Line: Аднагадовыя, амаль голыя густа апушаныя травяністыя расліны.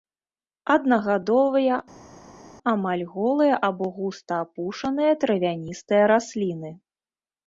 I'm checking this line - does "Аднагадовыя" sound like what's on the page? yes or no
yes